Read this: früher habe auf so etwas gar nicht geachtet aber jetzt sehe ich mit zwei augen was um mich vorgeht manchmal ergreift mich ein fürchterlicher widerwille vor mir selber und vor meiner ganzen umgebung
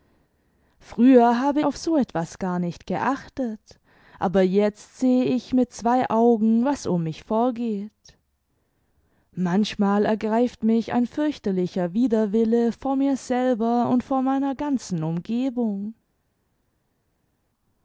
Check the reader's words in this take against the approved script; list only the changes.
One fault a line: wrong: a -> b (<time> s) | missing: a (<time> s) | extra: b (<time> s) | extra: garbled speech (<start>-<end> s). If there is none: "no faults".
no faults